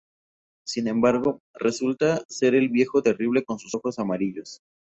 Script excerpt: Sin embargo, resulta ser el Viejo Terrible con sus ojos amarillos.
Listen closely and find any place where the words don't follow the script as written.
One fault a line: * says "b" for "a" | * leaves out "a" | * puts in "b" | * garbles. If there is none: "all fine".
all fine